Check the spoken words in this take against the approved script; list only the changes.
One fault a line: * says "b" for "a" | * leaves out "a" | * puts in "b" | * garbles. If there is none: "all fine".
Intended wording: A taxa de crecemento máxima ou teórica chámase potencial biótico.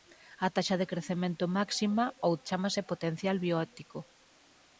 * leaves out "teórica"